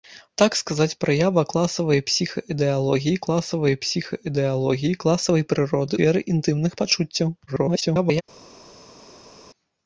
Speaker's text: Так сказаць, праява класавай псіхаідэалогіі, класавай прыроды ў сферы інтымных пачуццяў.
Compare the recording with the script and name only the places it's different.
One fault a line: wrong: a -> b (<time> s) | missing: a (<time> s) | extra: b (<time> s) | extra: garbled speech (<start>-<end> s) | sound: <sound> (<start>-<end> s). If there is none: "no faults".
extra: псіхаідэалогіі класавай (3.8 s)
missing: ў (5.9 s)
extra: garbled speech (7.5-8.2 s)